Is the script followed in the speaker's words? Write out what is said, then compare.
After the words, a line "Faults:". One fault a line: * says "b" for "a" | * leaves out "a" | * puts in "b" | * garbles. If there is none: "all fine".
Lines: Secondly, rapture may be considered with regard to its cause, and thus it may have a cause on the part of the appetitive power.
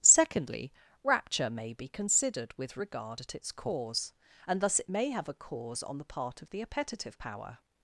Secondly, rapture may be considered with regard at its cause, and thus it may have a cause on the part of the appetitive power.
Faults:
* says "at" for "to"